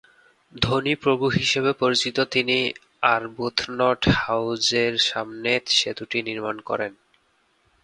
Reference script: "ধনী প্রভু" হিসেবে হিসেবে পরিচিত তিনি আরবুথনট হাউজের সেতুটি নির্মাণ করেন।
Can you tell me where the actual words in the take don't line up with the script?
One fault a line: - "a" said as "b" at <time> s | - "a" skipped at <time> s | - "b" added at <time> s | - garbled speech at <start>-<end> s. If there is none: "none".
- "হিসেবে" skipped at 1.7 s
- "সামনে" added at 5.1 s